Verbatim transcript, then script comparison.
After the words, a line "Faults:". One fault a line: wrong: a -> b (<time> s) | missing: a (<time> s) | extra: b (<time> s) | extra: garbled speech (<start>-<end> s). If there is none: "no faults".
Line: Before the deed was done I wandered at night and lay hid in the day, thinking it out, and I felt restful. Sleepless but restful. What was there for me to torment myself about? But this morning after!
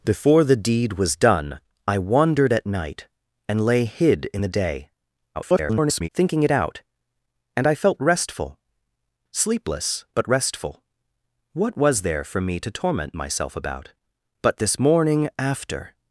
Before the deed was done I wandered at night and lay hid in the day, [garbled] thinking it out, and I felt restful. Sleepless but restful. What was there for me to torment myself about? But this morning after!
Faults:
extra: garbled speech (5.3-6.1 s)